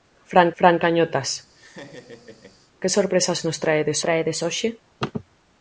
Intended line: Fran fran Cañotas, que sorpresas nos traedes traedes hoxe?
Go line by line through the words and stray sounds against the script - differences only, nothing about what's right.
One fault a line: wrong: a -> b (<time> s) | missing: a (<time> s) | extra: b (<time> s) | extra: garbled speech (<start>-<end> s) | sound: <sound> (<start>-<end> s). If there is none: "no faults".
sound: laugh (1.5-2.6 s)